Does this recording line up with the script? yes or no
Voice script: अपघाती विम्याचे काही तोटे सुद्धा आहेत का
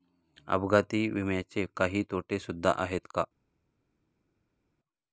yes